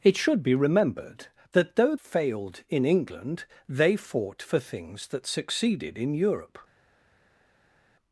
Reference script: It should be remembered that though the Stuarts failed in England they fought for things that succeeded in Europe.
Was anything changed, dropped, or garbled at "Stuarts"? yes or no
yes